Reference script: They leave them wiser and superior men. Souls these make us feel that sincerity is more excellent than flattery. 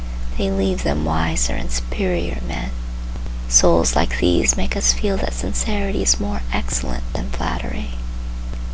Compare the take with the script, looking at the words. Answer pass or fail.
fail